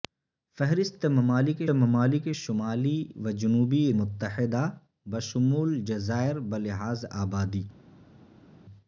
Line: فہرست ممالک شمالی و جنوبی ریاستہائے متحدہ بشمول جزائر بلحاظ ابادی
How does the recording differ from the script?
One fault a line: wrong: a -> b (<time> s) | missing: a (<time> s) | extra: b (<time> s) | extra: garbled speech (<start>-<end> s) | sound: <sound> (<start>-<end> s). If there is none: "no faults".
extra: ممالک (1.7 s)
missing: ریاستہائے (3.8 s)